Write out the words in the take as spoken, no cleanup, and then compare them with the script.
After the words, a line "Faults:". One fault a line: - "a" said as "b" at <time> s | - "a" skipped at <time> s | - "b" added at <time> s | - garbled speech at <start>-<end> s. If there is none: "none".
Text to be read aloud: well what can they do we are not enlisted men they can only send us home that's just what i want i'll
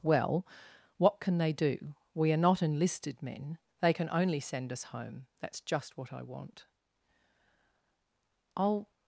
well what can they do we are not enlisted men they can only send us home that's just what i want i'll
Faults:
none